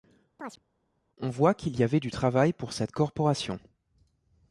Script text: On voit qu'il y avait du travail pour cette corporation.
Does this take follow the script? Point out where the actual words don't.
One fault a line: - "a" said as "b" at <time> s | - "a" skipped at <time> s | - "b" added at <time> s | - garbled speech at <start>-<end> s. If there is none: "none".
none